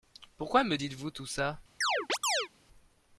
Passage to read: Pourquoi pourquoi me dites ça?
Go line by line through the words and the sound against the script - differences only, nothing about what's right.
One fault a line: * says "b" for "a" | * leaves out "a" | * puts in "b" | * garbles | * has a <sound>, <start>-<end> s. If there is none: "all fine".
* leaves out "pourquoi"
* puts in "vous tout"
* has a chirp, 1.8-2.5 s